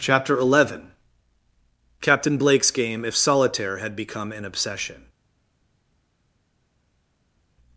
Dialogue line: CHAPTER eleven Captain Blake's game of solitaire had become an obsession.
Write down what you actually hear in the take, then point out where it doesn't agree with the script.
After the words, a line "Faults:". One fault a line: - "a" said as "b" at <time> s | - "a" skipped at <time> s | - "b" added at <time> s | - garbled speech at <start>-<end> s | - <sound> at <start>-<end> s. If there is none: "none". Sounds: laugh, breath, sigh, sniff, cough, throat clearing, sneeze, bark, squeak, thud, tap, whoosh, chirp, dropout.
CHAPTER eleven Captain Blake's game if solitaire had become an obsession.
Faults:
- "of" said as "if" at 3.0 s